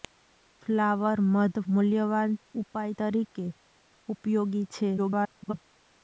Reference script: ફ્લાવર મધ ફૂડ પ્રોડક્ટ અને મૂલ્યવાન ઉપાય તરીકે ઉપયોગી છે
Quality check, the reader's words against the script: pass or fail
fail